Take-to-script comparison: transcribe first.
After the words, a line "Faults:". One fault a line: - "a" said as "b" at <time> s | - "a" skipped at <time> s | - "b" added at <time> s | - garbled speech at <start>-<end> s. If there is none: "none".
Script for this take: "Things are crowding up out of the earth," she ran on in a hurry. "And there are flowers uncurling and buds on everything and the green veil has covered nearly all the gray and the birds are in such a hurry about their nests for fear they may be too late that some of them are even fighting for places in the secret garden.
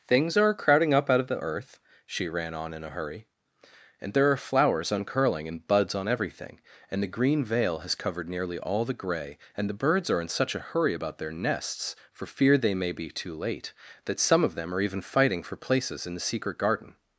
"Things are crowding up out of the earth," she ran on in a hurry. "And there are flowers uncurling and buds on everything and the green veil has covered nearly all the gray and the birds are in such a hurry about their nests for fear they may be too late that some of them are even fighting for places in the secret garden.
Faults:
none